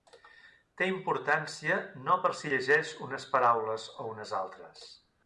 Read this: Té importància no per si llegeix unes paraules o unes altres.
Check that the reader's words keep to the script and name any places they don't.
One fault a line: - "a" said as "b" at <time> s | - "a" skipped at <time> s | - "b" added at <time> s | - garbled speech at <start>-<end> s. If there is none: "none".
none